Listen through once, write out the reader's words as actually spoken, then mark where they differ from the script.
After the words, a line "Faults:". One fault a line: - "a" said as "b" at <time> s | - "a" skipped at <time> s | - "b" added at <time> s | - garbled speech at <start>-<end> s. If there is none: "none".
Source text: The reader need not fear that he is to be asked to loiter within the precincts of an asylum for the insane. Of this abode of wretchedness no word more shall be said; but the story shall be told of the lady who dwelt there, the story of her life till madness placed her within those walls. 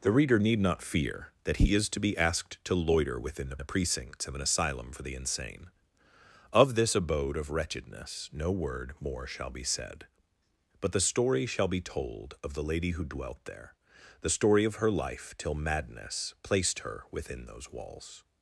The reader need not fear that he is to be asked to loiter within the the precincts of an asylum for the insane. Of this abode of wretchedness no word more shall be said; but the story shall be told of the lady who dwelt there, the story of her life till madness placed her within those walls.
Faults:
- "the" added at 3.6 s